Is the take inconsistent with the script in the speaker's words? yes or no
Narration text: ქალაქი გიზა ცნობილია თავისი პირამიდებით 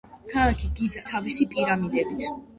yes